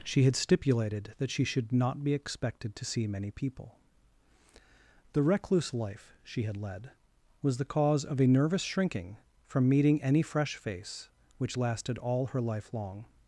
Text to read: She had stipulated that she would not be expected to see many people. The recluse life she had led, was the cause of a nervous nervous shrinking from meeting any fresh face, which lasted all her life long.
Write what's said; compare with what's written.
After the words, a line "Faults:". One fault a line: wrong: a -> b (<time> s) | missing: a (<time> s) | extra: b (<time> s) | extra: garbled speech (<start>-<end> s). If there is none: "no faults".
She had stipulated that she should not be expected to see many people. The recluse life she had led, was the cause of a nervous shrinking from meeting any fresh face, which lasted all her life long.
Faults:
wrong: would -> should (1.4 s)
missing: nervous (8.6 s)